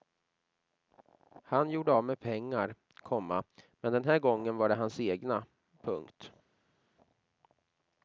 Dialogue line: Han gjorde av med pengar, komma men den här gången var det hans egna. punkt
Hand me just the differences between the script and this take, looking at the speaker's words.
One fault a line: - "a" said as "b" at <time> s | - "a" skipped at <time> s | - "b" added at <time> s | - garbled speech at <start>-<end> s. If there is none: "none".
none